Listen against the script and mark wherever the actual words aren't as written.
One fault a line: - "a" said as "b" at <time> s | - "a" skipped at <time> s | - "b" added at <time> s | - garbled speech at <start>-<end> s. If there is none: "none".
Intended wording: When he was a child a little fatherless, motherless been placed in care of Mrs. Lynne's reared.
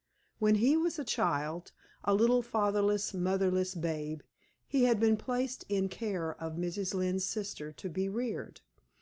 - "babe he had" added at 3.7 s
- "sister to be" added at 7.2 s